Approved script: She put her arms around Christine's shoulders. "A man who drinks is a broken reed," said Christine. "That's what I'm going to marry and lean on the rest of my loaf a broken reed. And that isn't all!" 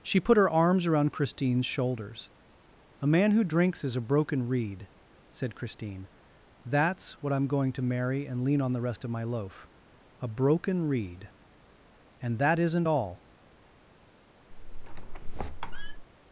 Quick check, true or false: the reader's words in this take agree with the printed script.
true